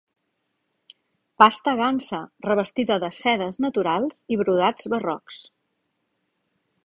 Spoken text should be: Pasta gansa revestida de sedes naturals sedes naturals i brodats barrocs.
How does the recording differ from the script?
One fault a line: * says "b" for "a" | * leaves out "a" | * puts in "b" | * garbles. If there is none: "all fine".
* leaves out "sedes naturals"